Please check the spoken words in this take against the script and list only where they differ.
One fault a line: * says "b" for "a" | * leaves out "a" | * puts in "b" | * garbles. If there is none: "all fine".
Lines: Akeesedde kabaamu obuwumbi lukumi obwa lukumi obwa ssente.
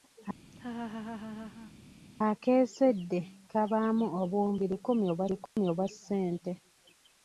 all fine